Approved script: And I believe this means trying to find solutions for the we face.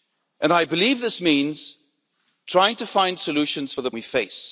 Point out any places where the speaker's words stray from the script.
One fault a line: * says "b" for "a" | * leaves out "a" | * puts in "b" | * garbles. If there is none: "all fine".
all fine